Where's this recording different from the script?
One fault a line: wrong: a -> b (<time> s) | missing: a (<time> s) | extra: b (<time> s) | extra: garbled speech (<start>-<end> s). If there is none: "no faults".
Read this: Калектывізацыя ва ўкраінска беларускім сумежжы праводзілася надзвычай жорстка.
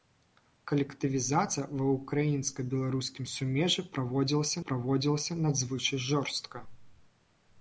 extra: праводзілася (4.7 s)